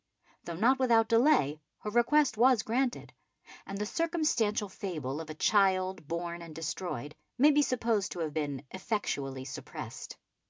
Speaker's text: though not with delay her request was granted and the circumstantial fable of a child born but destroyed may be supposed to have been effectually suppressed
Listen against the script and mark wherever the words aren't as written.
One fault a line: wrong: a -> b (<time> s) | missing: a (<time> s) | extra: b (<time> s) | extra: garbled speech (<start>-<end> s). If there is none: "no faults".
wrong: with -> without (0.8 s)
wrong: but -> and (6.4 s)